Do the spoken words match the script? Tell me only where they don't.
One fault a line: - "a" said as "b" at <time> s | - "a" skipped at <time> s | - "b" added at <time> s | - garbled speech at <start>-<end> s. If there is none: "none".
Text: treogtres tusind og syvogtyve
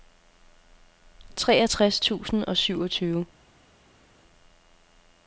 none